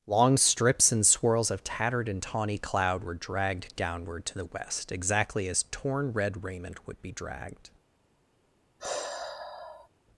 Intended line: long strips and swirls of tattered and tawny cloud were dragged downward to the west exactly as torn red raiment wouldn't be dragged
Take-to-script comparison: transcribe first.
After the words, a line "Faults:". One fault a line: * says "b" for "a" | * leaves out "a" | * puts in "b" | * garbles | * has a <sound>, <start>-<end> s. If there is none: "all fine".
long strips and swirls of tattered and tawny cloud were dragged downward to the west exactly as torn red raiment would be dragged
Faults:
* says "would" for "wouldn't"
* has a sigh, 8.8-9.9 s